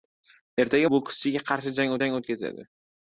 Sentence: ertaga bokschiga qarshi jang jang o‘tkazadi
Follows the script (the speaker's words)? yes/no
yes